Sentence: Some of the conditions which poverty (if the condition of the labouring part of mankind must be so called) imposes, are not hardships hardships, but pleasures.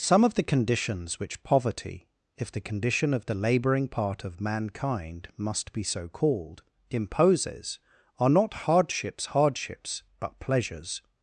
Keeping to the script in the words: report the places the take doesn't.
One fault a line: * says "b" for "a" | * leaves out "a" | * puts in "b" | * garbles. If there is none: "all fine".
all fine